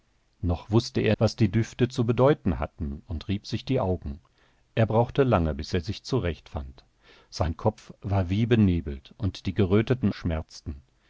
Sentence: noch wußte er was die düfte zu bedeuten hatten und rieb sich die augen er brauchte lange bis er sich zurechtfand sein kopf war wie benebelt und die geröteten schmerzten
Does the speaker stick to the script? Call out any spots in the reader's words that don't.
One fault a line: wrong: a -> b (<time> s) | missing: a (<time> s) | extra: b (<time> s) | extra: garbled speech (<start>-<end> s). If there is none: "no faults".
no faults